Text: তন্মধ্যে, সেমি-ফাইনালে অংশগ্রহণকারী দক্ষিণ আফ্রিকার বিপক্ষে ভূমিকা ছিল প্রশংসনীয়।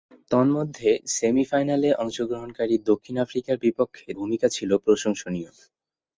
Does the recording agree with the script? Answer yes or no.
yes